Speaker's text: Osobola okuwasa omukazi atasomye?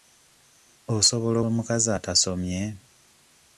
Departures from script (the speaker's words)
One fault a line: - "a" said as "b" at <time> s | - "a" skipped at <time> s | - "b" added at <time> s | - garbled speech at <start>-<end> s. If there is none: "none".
- "okuwasa" skipped at 1.4 s